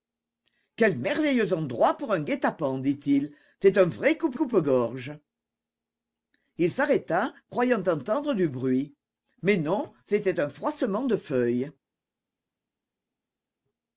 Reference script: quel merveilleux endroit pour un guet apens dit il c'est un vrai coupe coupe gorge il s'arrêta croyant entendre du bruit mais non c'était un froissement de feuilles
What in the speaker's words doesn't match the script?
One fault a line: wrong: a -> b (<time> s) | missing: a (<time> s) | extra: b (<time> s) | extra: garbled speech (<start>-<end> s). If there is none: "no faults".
no faults